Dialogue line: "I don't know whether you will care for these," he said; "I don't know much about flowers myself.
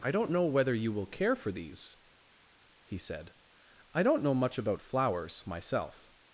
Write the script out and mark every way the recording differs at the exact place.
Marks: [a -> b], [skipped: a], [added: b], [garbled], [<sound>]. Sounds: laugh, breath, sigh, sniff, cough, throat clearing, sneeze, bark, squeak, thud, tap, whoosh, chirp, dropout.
"I don't know whether you will care for these," he said; "I don't know much about flowers myself.